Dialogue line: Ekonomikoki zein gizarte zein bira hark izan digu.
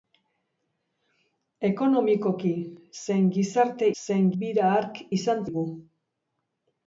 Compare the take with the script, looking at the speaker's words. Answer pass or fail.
pass